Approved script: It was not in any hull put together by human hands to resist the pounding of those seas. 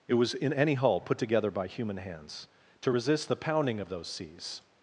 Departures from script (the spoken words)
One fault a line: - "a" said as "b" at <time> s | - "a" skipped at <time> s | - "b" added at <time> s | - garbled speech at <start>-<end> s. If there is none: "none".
- "not" skipped at 0.3 s